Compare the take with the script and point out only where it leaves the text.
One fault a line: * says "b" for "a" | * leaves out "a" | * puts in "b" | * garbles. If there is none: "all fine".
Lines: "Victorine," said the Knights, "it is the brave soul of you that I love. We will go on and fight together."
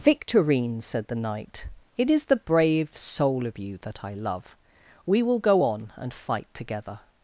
* says "Knight" for "Knights"